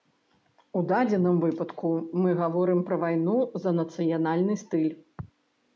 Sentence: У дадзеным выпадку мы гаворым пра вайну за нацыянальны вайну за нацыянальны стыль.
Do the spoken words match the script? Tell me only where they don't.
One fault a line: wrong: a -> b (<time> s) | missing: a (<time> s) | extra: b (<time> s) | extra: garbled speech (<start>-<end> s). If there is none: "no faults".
missing: вайну за нацыянальны (4.5 s)